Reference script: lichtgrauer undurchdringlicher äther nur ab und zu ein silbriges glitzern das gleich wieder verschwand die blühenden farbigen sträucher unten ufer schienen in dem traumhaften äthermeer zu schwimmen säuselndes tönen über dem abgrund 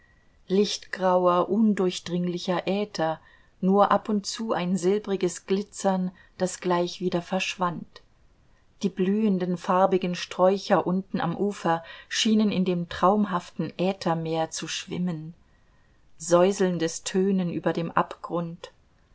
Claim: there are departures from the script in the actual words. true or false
true